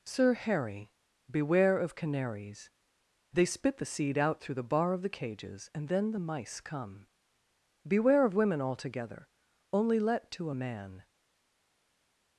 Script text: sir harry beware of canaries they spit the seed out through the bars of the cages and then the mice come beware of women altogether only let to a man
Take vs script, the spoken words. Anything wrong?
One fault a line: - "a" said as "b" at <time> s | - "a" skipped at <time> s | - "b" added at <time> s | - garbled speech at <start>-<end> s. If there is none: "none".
- "bars" said as "bar" at 4.6 s